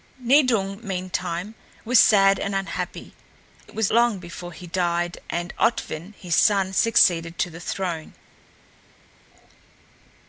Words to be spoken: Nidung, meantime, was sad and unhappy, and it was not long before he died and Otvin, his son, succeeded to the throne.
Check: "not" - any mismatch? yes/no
yes